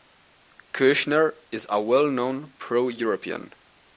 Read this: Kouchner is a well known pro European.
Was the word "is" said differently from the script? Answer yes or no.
no